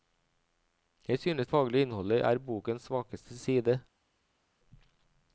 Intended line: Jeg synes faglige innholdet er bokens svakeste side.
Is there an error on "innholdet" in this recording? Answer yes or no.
no